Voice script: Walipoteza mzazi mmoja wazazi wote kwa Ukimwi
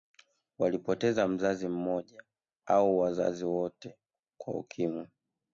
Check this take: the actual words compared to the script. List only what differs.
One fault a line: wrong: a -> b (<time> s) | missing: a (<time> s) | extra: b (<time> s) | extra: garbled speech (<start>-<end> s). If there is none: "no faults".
extra: au (2.7 s)